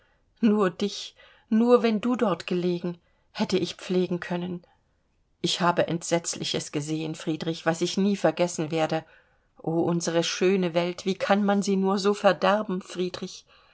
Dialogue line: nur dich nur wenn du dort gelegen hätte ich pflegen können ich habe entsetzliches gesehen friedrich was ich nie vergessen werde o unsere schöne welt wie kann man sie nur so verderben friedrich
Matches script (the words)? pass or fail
pass